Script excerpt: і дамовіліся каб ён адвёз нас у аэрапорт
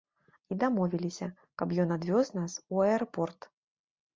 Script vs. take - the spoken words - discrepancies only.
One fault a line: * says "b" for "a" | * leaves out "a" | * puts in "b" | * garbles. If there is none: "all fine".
all fine